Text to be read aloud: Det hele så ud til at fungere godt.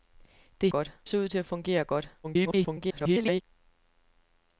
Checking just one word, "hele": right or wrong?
wrong